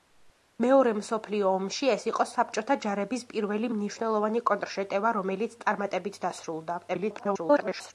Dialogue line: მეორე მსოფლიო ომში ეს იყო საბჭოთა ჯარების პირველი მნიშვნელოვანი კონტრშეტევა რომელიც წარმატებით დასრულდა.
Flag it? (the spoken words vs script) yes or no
yes